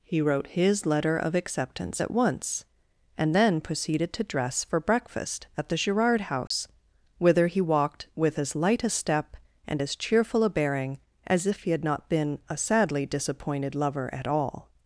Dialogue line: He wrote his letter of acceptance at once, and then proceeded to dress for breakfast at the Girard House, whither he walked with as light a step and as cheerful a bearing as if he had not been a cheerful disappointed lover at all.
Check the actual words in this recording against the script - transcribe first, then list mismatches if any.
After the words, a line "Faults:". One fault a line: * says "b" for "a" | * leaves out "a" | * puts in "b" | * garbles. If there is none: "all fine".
He wrote his letter of acceptance at once, and then proceeded to dress for breakfast at the Girard House, whither he walked with as light a step and as cheerful a bearing as if he had not been a sadly disappointed lover at all.
Faults:
* says "sadly" for "cheerful"